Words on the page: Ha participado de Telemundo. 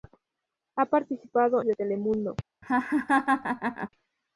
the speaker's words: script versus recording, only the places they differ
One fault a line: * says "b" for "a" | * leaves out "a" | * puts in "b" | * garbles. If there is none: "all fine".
all fine